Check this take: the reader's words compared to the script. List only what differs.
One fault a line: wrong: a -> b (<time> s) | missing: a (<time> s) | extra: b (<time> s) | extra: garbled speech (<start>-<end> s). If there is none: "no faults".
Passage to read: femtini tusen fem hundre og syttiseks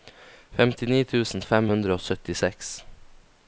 no faults